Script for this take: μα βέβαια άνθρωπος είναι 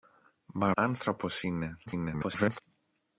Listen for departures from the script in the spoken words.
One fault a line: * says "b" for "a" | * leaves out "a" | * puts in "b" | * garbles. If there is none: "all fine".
* leaves out "βέβαια"
* garbles